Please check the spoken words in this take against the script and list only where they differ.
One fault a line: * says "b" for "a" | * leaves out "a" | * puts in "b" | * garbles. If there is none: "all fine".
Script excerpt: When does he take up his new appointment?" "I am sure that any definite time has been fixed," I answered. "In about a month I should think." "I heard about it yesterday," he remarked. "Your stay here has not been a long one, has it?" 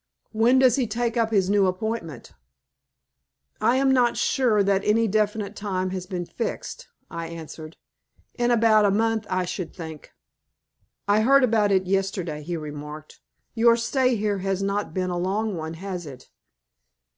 * puts in "not"